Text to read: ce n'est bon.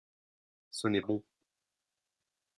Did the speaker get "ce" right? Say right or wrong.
right